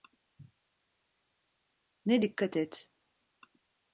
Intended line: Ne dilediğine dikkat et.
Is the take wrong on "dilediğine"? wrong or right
wrong